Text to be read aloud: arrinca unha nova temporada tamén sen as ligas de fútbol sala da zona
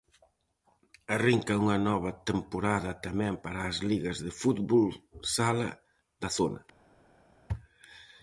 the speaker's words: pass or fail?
fail